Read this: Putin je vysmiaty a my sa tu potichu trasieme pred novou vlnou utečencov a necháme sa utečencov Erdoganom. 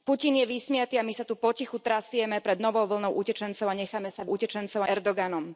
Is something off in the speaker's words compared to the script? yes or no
no